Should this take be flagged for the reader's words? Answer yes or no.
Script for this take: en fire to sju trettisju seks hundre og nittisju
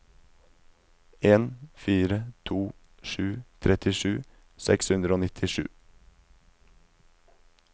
no